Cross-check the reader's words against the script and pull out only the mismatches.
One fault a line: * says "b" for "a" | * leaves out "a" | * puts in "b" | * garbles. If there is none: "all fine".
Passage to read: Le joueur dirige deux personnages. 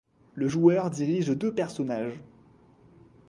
all fine